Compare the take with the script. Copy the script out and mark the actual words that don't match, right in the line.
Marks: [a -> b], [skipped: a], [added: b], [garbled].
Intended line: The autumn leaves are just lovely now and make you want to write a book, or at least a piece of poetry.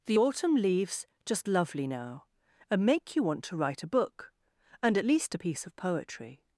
The autumn leaves [skipped: are] just lovely now and make you want to write a book, [or -> and] at least a piece of poetry.